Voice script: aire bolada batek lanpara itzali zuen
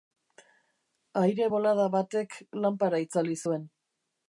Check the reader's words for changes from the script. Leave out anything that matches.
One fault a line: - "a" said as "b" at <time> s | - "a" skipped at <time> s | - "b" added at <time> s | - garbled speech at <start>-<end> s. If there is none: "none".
none